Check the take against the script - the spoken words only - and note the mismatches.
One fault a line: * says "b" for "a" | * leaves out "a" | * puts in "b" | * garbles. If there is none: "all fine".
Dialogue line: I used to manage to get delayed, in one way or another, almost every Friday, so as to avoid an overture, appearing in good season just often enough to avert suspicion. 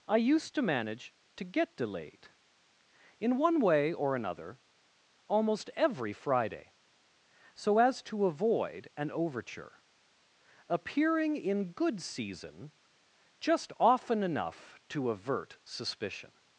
all fine